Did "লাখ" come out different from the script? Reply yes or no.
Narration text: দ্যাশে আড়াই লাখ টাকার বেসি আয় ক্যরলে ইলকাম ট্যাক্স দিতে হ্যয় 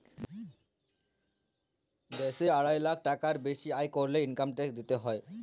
no